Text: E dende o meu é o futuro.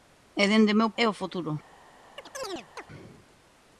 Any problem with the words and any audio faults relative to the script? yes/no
yes